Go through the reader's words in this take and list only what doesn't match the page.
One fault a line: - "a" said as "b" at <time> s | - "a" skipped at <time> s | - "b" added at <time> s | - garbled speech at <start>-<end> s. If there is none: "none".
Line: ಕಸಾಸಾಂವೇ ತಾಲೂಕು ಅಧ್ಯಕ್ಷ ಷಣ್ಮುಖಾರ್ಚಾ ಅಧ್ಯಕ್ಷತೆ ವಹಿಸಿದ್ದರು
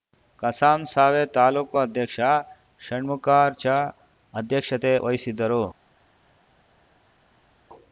none